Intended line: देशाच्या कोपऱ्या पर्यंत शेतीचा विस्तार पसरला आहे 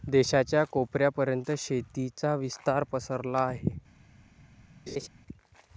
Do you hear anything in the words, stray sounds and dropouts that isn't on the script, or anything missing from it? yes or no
yes